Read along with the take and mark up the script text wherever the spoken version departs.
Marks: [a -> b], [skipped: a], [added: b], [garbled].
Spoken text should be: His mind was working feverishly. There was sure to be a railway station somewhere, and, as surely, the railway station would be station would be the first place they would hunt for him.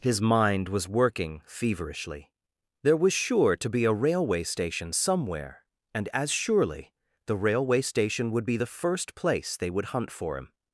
His mind was working feverishly. There was sure to be a railway station somewhere, and, as surely, the railway station would be [skipped: station would be] the first place they would hunt for him.